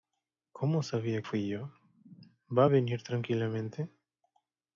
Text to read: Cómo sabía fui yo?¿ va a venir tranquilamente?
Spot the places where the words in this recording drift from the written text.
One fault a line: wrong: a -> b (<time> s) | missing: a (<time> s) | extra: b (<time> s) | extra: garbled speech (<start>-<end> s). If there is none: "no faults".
no faults